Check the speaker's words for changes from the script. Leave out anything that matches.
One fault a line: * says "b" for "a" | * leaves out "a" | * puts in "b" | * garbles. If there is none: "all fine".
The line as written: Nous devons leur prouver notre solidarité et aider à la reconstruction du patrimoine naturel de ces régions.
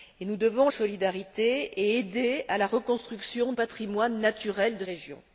* leaves out "leur prouver notre"
* leaves out "du"
* leaves out "ces"